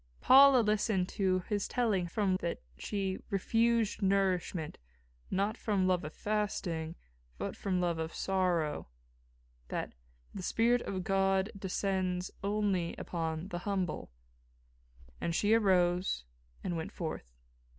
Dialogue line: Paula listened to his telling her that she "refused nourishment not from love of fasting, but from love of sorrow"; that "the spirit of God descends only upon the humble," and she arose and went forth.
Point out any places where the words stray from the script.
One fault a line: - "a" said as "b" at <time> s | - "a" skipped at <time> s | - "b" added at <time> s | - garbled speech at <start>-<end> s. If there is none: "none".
- "her" said as "from" at 2.1 s